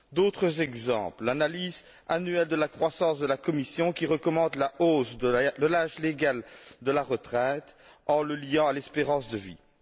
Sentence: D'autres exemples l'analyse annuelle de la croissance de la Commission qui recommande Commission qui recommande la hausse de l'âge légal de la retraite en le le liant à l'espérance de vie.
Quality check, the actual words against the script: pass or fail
fail